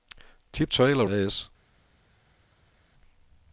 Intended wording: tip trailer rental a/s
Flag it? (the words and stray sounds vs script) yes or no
yes